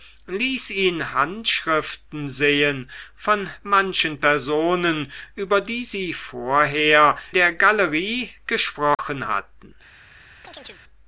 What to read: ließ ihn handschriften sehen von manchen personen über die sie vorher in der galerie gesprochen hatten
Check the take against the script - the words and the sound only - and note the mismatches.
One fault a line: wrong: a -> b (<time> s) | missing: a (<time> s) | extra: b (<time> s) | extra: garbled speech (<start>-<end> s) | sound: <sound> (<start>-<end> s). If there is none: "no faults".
missing: in (7.2 s)
sound: dropout (8.9-9.0 s)
sound: chirp (10.4-10.8 s)